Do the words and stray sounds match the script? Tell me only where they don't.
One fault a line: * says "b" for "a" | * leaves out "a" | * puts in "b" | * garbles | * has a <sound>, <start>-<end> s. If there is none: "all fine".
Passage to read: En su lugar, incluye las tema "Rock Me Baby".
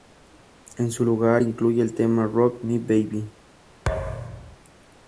* says "el" for "las"
* has a thud, 3.9-4.6 s